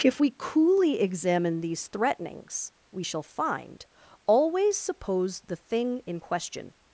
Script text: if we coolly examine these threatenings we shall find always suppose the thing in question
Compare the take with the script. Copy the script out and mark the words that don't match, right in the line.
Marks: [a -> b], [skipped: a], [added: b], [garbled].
if we coolly examine these threatenings we shall find always suppose the thing in question